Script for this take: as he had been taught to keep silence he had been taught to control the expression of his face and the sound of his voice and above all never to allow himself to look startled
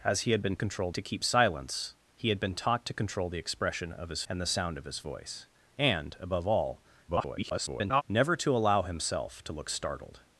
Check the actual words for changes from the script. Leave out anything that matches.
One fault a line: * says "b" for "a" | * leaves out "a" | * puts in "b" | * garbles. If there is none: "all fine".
* says "control" for "taught"
* leaves out "face"
* garbles